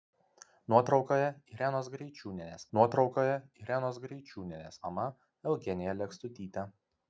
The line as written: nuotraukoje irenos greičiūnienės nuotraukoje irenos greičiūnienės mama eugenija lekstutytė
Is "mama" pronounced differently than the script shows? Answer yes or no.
no